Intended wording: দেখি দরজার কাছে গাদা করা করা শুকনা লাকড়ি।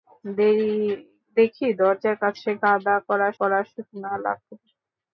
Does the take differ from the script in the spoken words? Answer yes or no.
no